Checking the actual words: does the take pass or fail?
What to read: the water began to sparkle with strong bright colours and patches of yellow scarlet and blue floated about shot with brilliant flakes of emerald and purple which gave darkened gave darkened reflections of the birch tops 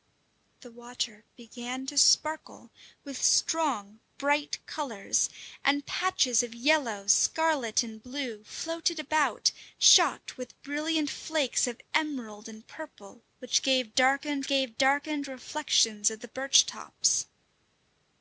pass